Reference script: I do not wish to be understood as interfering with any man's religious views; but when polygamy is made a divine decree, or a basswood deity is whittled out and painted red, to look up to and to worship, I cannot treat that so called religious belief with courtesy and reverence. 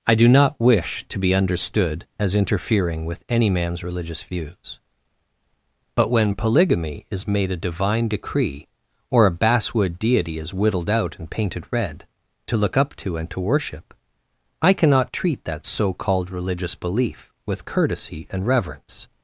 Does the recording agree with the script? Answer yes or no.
yes